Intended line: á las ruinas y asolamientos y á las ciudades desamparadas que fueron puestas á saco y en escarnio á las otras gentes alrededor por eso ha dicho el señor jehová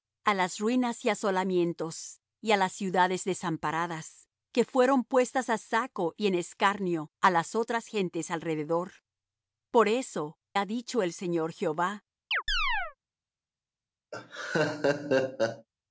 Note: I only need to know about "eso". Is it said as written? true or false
true